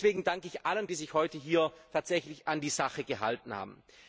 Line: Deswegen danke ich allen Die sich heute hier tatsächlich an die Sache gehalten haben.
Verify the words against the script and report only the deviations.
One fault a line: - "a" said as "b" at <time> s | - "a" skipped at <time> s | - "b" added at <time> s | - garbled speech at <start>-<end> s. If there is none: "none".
none